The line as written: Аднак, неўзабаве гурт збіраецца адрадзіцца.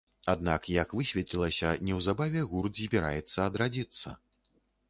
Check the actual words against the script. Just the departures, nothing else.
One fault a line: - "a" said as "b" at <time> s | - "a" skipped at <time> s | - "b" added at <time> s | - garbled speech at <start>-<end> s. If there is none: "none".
- "як высветлілася" added at 0.8 s